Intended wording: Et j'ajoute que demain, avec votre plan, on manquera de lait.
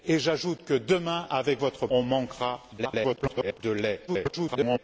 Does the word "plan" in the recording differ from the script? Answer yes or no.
yes